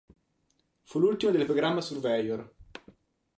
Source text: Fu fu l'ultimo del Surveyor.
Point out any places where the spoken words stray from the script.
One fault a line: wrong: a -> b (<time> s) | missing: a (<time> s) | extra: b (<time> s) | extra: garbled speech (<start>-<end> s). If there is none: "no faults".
missing: fu (1.0 s)
extra: Programma (1.4 s)